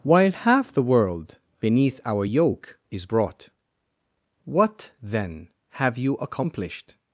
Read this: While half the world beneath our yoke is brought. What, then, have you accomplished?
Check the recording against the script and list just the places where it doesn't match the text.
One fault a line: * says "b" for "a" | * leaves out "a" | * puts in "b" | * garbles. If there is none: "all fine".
all fine